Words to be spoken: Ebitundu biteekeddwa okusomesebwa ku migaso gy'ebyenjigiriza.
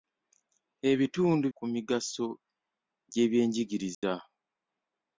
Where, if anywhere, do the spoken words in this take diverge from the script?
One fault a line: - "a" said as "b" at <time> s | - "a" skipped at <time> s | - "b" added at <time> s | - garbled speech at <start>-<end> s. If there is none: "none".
- "biteekeddwa okusomesebwa" skipped at 1.4 s